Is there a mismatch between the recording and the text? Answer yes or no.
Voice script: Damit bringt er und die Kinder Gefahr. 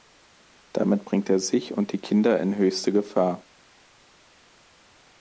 yes